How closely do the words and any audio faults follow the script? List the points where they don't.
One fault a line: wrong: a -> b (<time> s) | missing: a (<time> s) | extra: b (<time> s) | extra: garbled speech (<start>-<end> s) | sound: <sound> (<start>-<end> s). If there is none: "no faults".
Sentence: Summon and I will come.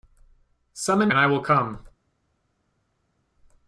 no faults